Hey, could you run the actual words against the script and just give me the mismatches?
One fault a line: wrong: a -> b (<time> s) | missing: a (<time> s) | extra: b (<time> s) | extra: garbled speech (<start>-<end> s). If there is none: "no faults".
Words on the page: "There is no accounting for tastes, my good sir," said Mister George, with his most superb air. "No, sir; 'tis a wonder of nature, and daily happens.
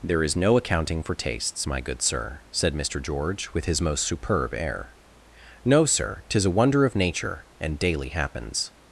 no faults